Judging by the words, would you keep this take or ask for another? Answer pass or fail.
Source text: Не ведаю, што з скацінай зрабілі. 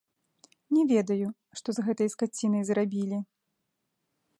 fail